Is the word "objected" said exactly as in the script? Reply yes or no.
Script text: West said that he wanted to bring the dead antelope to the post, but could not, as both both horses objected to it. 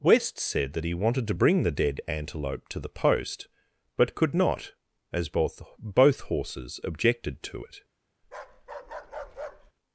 yes